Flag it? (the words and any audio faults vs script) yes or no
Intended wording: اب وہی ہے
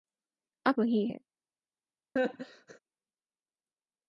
yes